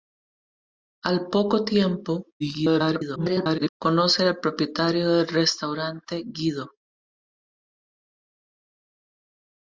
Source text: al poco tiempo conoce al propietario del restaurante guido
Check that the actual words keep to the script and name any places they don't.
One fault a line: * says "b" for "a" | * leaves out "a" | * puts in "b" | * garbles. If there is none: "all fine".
* garbles